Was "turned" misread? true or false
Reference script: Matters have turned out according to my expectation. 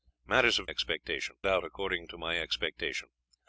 true